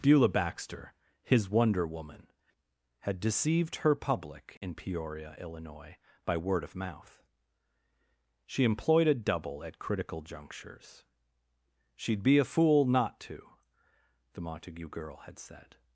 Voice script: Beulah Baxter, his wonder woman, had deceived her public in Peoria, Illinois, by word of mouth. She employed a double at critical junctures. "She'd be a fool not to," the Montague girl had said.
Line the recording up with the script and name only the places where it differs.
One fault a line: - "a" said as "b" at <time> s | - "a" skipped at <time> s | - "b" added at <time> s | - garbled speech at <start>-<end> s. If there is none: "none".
none